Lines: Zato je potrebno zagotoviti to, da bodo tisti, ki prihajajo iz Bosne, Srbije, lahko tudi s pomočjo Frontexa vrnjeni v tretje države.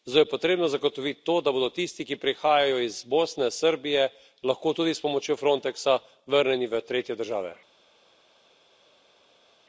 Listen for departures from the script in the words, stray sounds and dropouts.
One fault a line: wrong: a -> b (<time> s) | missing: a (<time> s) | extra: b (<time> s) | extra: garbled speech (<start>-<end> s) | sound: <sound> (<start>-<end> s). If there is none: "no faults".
no faults